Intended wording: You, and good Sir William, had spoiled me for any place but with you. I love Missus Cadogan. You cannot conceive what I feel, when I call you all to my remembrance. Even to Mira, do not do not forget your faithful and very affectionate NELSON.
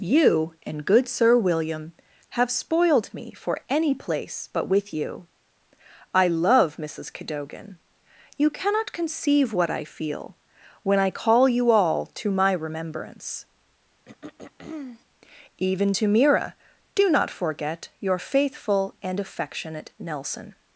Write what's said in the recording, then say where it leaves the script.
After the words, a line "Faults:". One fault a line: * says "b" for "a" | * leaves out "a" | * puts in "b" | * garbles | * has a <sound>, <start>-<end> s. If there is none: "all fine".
You, and good Sir William, have spoiled me for any place but with you. I love Missus Cadogan. You cannot conceive what I feel, when I call you all to my remembrance. Even to Mira, do not forget your faithful and affectionate NELSON.
Faults:
* says "have" for "had"
* has a throat clearing, 14.0-15.0 s
* leaves out "do not"
* leaves out "very"